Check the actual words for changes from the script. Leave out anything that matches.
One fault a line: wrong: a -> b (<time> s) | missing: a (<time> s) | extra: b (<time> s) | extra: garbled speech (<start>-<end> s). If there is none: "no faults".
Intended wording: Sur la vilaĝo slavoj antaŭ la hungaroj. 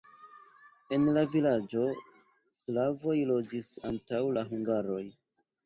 wrong: Sur -> En (0.9 s)
extra: loĝis (3.4 s)